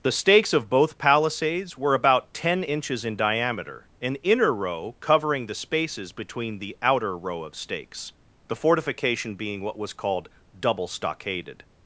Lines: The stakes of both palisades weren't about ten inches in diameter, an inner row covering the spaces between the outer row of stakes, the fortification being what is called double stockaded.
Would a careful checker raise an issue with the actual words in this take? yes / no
yes